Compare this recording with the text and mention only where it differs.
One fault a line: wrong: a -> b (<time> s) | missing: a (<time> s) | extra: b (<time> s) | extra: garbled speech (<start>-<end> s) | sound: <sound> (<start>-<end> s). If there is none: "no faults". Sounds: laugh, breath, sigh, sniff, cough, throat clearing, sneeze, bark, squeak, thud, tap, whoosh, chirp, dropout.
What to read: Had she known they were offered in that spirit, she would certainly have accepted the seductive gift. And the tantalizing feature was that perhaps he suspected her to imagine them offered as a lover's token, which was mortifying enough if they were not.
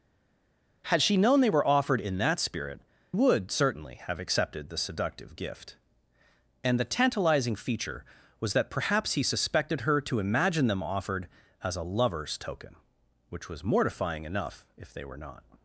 missing: she (2.8 s)